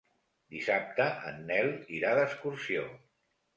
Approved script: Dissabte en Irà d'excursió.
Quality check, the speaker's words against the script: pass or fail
fail